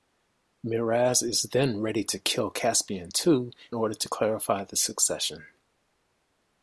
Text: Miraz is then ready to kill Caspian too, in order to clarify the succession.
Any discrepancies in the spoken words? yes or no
yes